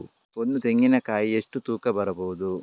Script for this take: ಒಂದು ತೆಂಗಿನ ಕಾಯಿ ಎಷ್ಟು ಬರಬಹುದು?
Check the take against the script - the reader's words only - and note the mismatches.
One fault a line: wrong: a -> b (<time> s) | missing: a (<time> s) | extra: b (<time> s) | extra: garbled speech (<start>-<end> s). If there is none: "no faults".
extra: ತೂಕ (1.6 s)